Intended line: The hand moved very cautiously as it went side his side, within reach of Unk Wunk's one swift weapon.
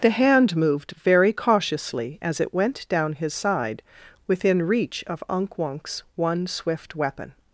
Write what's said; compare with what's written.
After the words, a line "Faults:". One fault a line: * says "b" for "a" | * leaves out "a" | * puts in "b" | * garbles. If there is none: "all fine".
The hand moved very cautiously as it went down his side, within reach of Unk Wunk's one swift weapon.
Faults:
* says "down" for "side"